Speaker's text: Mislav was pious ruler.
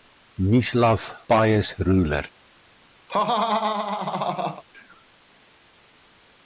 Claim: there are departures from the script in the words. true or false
true